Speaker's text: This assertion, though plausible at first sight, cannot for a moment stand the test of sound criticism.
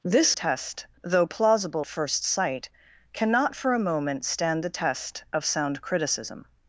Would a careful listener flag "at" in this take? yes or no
yes